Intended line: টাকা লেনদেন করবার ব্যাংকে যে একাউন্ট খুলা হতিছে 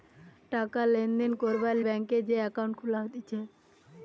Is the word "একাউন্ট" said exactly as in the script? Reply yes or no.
yes